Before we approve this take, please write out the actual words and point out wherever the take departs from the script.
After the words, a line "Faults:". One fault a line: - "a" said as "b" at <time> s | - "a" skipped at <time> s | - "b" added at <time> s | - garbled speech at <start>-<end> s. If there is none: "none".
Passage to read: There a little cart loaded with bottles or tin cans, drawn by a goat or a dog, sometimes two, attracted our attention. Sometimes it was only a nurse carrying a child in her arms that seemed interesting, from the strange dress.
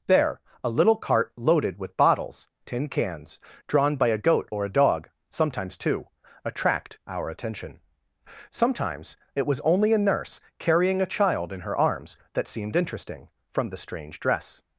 There a little cart loaded with bottles tin cans, drawn by a goat or a dog, sometimes two, attract our attention. Sometimes it was only a nurse carrying a child in her arms that seemed interesting, from the strange dress.
Faults:
- "or" skipped at 2.5 s
- "attracted" said as "attract" at 6.5 s